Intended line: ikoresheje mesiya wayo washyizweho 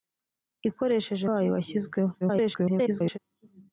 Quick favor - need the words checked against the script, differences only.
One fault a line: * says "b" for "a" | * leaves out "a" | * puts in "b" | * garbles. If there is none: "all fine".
* leaves out "mesiya"
* garbles